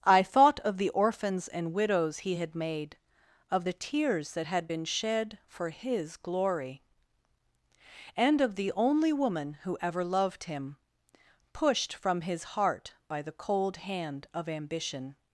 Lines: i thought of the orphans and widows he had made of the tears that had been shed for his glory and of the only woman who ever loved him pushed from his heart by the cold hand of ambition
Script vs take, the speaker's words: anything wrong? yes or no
no